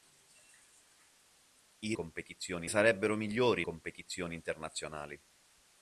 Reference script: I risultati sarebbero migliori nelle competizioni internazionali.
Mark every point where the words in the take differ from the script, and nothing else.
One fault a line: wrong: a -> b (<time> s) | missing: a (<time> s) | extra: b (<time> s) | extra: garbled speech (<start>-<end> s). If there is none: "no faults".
wrong: risultati -> competizioni (1.9 s)
missing: nelle (3.7 s)